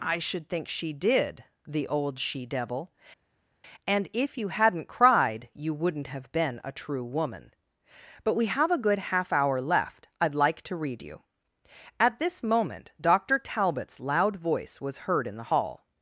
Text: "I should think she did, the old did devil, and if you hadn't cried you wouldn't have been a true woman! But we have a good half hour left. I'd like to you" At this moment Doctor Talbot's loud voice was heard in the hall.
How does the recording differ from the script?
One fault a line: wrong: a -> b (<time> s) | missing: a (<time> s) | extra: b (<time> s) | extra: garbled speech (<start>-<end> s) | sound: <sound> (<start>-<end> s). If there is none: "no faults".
wrong: did -> she (2.2 s)
extra: read (10.7 s)